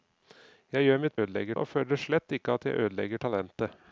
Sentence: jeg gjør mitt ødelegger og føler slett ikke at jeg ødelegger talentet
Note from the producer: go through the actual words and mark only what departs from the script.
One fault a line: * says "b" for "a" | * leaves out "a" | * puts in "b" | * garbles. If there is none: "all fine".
all fine